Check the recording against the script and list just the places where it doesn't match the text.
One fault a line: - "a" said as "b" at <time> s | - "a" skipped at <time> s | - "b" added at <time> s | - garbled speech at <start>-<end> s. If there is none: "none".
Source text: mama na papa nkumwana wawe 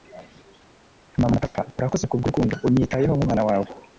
- "urakoze kubwurukundo unyitayeho" added at 1.8 s